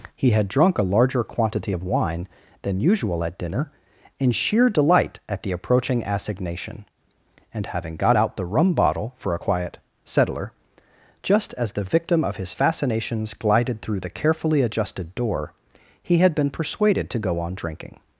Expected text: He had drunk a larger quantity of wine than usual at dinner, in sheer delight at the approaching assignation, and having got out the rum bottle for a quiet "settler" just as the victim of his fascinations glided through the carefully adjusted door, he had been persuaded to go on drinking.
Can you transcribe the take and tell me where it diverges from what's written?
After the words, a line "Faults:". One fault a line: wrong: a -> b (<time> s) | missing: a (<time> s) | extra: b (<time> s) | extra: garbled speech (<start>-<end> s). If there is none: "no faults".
He had drunk a larger quantity of wine than usual at dinner, in sheer delight at the approaching assignation, and having got out the rum bottle for a quiet "settler" just as the victim of his fascinations glided through the carefully adjusted door, he had been persuaded to go on drinking.
Faults:
no faults